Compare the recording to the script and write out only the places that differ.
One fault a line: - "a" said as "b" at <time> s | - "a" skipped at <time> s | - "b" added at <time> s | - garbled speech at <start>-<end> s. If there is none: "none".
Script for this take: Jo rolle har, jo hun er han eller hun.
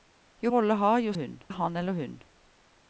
none